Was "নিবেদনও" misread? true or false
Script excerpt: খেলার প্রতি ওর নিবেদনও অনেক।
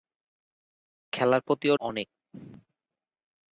true